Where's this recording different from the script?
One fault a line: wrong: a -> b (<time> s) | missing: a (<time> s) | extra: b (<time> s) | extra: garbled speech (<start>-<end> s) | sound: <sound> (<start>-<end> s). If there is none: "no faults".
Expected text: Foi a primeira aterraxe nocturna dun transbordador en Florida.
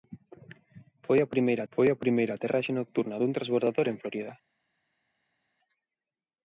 extra: foi a primeira (1.7 s)